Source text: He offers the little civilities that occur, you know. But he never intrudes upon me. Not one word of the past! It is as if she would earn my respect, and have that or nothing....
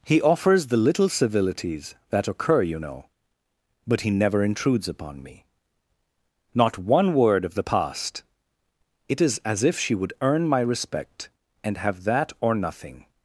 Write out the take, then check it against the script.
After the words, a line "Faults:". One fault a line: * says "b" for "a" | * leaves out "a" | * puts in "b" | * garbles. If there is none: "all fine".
He offers the little civilities that occur, you know. But he never intrudes upon me. Not one word of the past! It is as if she would earn my respect, and have that or nothing....
Faults:
all fine